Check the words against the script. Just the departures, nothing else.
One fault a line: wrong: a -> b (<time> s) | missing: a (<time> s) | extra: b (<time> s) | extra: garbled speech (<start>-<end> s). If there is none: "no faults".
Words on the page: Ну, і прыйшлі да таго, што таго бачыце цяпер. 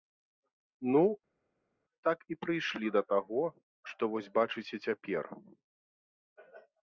extra: так (2.1 s)
wrong: таго -> вось (4.1 s)